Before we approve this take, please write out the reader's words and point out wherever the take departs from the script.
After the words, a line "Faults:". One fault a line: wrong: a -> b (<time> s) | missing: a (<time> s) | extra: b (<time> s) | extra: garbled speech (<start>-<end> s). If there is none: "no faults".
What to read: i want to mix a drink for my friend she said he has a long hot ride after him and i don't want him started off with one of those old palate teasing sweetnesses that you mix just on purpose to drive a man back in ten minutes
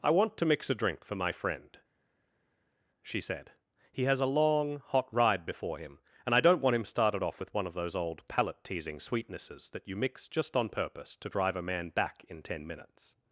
i want to mix a drink for my friend she said he has a long hot ride before him and i don't want him started off with one of those old palate teasing sweetnesses that you mix just on purpose to drive a man back in ten minutes
Faults:
wrong: after -> before (5.5 s)